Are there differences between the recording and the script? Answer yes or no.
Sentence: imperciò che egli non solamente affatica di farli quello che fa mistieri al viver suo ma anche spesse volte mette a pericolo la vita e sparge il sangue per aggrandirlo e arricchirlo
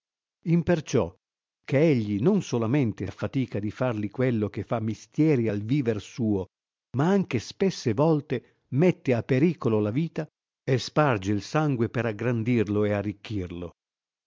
no